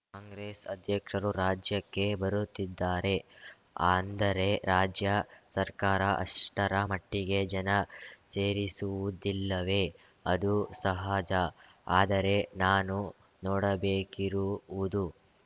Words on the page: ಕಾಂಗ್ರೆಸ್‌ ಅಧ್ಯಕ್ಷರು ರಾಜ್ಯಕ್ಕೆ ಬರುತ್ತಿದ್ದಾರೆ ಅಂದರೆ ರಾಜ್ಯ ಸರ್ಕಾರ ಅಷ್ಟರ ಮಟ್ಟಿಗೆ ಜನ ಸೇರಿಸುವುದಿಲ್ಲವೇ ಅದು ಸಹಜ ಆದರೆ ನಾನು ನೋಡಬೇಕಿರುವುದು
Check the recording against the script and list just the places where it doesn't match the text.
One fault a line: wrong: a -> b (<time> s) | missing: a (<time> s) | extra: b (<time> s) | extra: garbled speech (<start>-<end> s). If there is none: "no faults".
no faults